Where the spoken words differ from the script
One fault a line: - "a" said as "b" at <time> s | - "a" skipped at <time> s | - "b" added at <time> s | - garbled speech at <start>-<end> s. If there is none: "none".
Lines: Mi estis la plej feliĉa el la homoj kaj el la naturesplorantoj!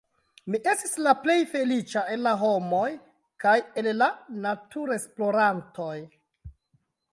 none